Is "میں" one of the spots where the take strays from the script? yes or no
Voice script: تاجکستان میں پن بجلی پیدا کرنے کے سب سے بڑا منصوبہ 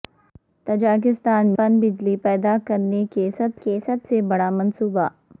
yes